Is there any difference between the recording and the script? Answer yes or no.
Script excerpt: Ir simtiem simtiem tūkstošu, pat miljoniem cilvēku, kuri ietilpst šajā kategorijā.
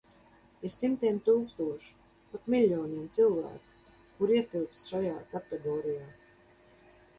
yes